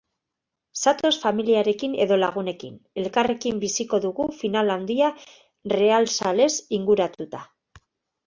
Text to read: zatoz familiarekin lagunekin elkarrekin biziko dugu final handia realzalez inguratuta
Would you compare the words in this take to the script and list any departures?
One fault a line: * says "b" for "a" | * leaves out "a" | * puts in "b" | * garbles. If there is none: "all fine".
* puts in "edo"